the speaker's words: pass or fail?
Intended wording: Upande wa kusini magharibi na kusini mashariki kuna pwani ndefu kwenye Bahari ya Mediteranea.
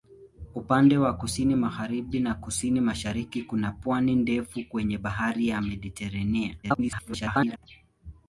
fail